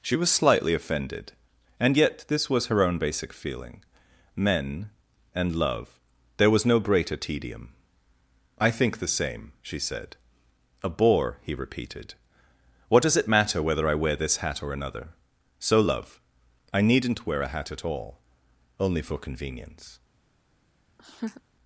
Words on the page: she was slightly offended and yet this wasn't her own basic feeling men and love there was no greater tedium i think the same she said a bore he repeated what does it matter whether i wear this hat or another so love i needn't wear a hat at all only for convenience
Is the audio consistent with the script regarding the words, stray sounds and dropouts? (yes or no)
no